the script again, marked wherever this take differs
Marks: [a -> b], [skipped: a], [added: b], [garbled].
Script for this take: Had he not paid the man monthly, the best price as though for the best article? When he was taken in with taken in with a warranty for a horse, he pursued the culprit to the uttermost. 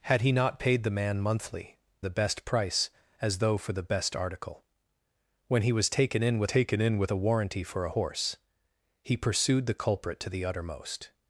Had he not paid the man monthly, the best price as though for the best article? When he was taken in with taken in with a warranty for a horse, he pursued the culprit to the uttermost.